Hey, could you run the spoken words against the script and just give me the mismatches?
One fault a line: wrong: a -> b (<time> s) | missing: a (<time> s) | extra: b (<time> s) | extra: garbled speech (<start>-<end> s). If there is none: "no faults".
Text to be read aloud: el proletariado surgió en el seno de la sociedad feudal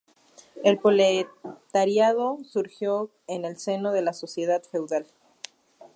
no faults